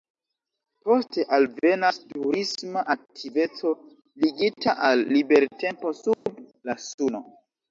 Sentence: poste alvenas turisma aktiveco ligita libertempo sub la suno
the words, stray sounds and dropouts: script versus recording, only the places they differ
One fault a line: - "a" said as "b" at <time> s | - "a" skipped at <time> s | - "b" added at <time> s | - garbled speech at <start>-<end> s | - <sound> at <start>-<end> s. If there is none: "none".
- "al" added at 4.9 s
- dropout at 6.1-6.3 s